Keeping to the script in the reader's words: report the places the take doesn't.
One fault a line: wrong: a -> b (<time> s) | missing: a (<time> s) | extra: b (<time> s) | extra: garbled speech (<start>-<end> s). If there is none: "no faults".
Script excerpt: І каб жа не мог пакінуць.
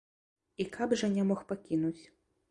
no faults